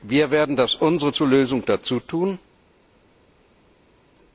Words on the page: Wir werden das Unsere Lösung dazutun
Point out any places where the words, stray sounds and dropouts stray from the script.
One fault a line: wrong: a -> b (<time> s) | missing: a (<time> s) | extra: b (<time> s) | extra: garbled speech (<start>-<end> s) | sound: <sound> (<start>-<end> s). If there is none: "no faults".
extra: zur (1.1 s)